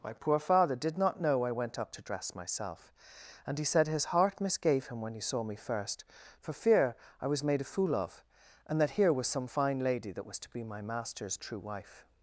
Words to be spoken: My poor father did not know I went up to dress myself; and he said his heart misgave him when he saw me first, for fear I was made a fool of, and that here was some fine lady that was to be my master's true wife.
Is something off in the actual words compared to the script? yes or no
no